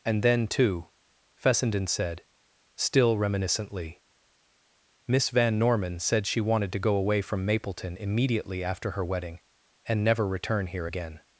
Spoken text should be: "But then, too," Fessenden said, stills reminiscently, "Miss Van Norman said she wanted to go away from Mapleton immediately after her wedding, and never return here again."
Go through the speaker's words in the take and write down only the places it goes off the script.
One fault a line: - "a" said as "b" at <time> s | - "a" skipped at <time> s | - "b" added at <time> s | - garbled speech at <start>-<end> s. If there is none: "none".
- "But" said as "And" at 0.0 s
- "stills" said as "still" at 2.8 s